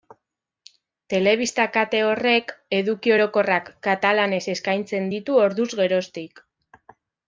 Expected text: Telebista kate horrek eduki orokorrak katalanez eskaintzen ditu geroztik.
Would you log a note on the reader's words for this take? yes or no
yes